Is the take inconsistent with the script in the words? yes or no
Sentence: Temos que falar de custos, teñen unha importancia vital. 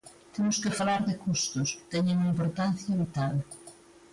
no